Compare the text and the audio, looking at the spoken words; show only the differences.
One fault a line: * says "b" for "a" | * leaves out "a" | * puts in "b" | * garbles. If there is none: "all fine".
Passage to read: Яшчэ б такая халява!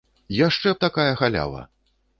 all fine